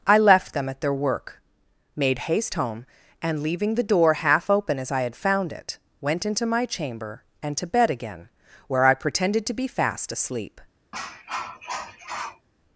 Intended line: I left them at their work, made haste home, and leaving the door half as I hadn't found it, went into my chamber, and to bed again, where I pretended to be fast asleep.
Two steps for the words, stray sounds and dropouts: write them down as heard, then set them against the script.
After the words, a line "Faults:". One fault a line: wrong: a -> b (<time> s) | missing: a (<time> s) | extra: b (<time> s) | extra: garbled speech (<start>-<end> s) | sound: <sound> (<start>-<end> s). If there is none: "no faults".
I left them at their work, made haste home, and leaving the door half open as I had found it, went into my chamber, and to bed again, where I pretended to be fast asleep.
Faults:
extra: open (4.5 s)
wrong: hadn't -> had (5.0 s)
sound: cough (10.9-12.5 s)